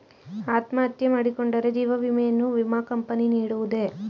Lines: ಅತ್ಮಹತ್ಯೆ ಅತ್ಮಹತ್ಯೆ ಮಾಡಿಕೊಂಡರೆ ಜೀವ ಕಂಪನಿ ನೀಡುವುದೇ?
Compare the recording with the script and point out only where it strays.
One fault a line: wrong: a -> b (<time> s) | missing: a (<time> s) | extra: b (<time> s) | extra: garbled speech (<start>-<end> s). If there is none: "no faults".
missing: ಅತ್ಮಹತ್ಯೆ (1.1 s)
extra: ವಿಮೆಯನ್ನು ವಿಮಾ (2.0 s)